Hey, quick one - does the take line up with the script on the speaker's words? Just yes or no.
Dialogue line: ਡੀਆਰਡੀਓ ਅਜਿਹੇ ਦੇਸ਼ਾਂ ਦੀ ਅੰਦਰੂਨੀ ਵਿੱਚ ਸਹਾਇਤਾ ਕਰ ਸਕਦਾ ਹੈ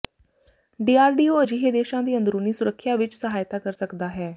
no